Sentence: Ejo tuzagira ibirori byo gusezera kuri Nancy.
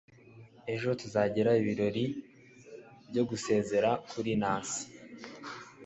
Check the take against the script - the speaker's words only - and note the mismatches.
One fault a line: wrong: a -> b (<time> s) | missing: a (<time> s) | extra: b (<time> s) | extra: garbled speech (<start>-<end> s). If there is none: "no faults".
no faults